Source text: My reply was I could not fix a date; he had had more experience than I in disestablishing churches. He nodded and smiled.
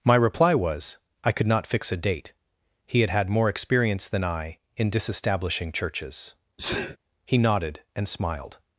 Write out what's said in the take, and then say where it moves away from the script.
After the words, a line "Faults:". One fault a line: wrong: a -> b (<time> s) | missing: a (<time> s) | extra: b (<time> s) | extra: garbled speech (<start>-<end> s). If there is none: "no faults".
My reply was I could not fix a date; he had had more experience than I in disestablishing churches. He nodded and smiled.
Faults:
no faults